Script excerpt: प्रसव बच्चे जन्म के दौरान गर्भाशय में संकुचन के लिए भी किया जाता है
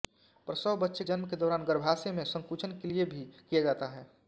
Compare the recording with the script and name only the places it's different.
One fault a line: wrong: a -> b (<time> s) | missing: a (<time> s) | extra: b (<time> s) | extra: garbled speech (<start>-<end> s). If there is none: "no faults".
no faults